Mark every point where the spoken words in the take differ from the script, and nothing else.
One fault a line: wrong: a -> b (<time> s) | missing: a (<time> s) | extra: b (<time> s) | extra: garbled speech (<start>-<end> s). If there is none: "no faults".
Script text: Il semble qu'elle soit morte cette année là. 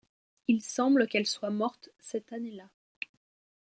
no faults